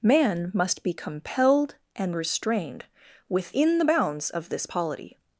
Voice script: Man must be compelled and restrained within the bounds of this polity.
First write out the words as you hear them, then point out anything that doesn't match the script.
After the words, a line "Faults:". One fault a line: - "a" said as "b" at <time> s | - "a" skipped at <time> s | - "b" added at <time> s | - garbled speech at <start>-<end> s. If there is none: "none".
Man must be compelled and restrained within the bounds of this polity.
Faults:
none